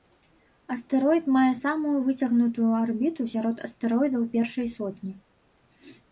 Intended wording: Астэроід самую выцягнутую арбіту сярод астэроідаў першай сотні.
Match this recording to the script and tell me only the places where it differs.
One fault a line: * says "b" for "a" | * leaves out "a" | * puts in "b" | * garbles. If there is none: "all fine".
* puts in "мае"